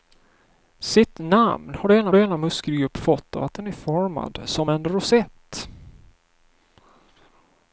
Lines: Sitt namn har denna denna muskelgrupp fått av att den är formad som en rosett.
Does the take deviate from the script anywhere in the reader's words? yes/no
no